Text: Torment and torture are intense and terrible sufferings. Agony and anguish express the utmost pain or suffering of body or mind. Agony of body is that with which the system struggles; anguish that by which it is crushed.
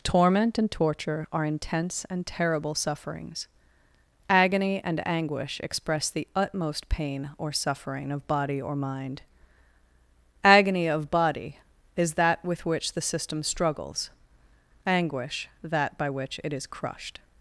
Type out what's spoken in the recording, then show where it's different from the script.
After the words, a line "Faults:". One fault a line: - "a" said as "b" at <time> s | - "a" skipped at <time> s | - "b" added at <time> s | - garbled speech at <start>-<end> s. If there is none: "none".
Torment and torture are intense and terrible sufferings. Agony and anguish express the utmost pain or suffering of body or mind. Agony of body is that with which the system struggles; anguish that by which it is crushed.
Faults:
none